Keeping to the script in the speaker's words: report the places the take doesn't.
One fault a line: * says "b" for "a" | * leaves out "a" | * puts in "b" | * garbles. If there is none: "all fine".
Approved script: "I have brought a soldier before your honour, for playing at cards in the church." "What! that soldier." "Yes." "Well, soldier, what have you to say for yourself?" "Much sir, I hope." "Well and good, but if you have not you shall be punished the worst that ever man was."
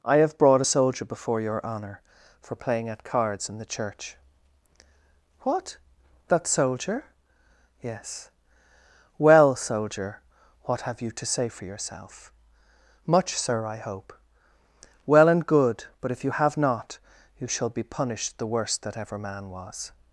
all fine